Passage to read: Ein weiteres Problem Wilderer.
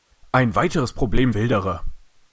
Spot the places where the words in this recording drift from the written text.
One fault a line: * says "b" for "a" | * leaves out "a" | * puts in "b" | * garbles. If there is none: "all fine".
all fine